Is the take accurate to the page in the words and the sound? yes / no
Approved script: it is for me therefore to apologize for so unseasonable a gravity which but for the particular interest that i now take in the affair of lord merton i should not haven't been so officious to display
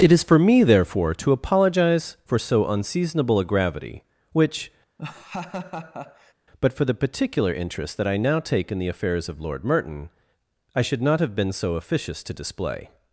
no